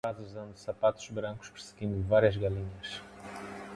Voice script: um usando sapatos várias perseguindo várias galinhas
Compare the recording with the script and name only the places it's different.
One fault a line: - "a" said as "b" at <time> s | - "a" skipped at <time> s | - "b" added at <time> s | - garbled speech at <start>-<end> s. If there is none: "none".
- "rapaz" added at 0.1 s
- "várias" said as "brancos" at 1.1 s